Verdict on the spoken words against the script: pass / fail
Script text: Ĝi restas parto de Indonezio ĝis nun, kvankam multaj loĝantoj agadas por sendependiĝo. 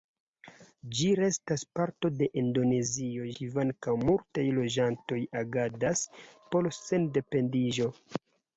fail